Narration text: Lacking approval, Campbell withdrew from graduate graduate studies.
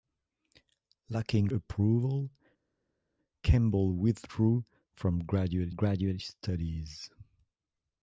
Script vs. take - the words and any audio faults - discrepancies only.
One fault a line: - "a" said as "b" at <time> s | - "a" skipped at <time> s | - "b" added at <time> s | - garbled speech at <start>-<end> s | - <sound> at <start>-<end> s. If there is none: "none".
none